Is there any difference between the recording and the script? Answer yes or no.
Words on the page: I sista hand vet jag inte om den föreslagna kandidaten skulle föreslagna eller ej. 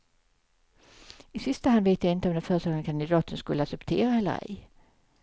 yes